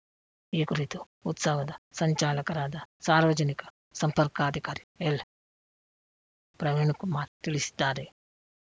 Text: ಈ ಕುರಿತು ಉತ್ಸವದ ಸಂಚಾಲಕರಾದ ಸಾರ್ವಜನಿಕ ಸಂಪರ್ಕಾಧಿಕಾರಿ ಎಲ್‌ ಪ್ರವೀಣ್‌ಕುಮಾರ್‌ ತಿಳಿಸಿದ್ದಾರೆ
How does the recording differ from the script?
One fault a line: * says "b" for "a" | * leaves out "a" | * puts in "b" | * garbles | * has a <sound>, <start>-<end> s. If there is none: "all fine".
all fine